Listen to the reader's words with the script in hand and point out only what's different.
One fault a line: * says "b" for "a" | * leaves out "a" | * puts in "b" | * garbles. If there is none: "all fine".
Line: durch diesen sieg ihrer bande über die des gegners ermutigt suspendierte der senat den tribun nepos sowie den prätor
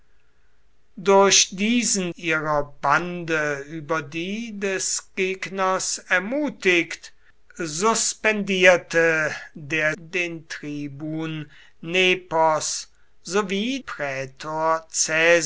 * leaves out "sieg"
* leaves out "senat"
* leaves out "den"